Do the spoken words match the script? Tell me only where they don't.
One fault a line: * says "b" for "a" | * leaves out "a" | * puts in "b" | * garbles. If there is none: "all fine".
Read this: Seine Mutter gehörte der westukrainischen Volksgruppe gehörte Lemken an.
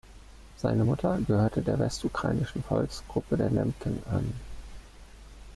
* says "der" for "gehörte"